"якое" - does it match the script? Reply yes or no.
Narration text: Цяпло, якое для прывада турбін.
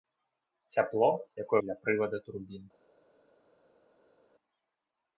yes